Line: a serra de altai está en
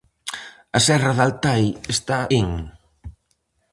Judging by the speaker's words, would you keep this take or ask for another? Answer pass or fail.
pass